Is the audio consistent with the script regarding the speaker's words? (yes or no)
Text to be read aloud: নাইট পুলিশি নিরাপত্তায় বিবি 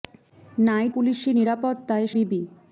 yes